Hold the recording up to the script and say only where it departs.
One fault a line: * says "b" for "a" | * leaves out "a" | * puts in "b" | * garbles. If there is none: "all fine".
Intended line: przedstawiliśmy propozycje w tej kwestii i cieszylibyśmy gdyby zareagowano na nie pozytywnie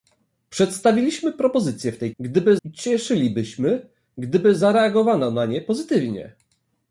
* says "gdyby" for "kwestii"